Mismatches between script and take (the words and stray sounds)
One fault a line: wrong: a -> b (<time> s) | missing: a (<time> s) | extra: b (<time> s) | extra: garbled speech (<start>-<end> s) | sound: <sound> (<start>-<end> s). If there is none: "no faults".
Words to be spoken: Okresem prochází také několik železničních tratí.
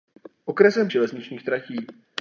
missing: prochází také několik (0.9 s)